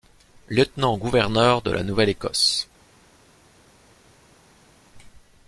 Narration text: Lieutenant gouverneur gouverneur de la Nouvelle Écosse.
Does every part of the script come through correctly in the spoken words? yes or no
no